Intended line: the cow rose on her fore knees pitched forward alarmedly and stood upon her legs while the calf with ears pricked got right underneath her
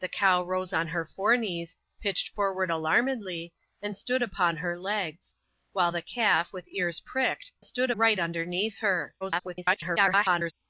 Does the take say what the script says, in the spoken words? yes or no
no